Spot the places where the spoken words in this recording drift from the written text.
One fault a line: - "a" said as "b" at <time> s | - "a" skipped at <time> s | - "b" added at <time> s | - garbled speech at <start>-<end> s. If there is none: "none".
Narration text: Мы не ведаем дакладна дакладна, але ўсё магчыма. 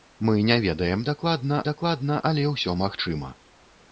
none